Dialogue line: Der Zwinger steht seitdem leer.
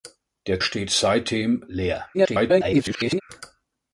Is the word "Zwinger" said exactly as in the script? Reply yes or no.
no